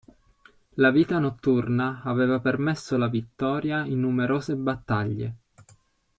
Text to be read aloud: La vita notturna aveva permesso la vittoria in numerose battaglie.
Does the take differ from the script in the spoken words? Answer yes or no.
no